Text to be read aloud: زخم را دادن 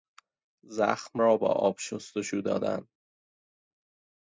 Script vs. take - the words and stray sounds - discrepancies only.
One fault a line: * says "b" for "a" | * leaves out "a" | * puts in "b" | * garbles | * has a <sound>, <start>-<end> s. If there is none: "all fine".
* puts in "با آب شستشو"